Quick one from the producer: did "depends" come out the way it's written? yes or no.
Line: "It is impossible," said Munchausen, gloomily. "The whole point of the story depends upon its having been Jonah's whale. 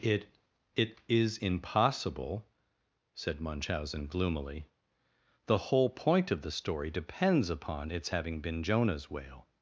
yes